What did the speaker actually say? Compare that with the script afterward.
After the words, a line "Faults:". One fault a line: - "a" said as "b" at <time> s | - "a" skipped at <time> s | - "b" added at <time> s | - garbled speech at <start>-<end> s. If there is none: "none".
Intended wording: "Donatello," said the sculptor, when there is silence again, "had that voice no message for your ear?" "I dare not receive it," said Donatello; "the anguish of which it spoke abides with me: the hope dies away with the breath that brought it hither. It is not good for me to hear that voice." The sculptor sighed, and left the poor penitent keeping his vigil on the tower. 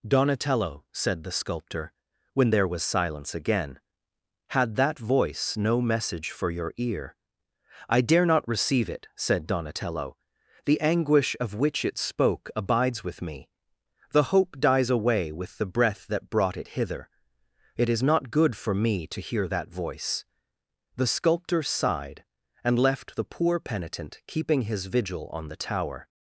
"Donatello," said the sculptor, when there was silence again, "had that voice no message for your ear?" "I dare not receive it," said Donatello; "the anguish of which it spoke abides with me: the hope dies away with the breath that brought it hither. It is not good for me to hear that voice." The sculptor sighed, and left the poor penitent keeping his vigil on the tower.
Faults:
- "is" said as "was" at 2.7 s